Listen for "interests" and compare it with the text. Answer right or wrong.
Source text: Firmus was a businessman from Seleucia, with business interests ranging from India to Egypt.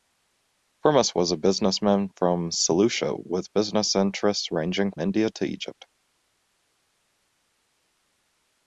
right